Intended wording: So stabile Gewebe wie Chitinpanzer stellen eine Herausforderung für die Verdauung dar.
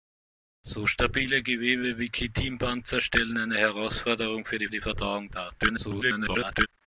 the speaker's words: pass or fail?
fail